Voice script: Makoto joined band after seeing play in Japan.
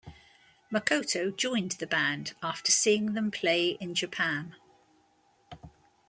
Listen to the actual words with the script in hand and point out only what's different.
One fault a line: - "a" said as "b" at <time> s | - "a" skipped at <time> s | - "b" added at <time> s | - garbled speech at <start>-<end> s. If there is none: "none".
- "the" added at 1.7 s
- "them" added at 3.1 s